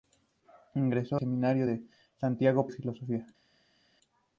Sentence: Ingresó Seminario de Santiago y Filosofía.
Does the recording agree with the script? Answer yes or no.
yes